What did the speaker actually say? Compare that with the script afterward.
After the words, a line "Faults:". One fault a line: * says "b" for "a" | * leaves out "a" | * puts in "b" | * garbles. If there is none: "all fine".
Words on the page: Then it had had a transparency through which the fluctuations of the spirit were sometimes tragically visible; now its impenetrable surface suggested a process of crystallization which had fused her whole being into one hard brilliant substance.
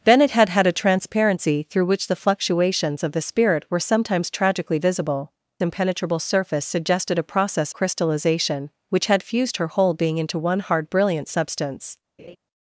Then it had had a transparency through which the fluctuations of the spirit were sometimes tragically visible; impenetrable surface suggested a process crystallization which had fused her whole being into one hard brilliant substance.
Faults:
* leaves out "now its"
* leaves out "of"